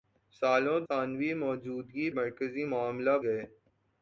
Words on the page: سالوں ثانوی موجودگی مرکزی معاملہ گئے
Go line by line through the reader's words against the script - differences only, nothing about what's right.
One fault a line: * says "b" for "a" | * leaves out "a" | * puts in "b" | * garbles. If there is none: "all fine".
all fine